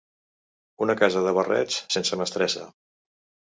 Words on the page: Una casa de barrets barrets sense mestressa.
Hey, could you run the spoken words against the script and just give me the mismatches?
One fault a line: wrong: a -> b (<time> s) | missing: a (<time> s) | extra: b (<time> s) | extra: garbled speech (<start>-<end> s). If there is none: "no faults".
missing: barrets (1.8 s)